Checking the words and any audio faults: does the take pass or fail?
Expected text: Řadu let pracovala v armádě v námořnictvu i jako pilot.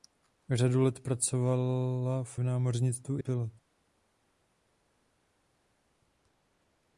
fail